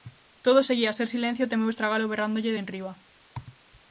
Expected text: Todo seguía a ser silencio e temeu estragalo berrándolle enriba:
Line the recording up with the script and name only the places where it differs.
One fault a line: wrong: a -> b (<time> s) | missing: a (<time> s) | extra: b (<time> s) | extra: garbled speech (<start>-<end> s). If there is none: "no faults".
no faults